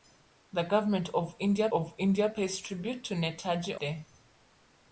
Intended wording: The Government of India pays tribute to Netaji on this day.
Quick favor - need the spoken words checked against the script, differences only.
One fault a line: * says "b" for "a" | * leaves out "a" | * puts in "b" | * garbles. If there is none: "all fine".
* puts in "of India"
* leaves out "on this"